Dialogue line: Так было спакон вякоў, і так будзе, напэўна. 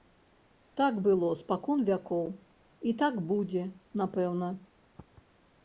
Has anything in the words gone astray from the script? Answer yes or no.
no